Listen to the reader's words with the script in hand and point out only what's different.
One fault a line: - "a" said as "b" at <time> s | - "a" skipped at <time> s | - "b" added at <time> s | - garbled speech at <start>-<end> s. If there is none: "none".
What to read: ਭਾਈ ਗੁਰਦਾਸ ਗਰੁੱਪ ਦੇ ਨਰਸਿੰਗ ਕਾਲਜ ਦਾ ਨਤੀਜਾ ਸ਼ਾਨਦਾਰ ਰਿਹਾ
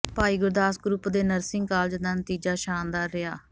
none